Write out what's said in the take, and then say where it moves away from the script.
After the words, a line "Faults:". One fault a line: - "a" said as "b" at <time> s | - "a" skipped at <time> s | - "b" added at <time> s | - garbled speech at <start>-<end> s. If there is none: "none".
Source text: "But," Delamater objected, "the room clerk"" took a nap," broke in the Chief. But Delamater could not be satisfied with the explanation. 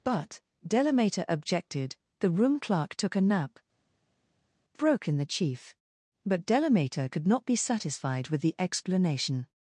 "But," Delamater objected, "the room clerk"" took a nap," broke in the Chief. But Delamater could not be satisfied with the explanation.
Faults:
none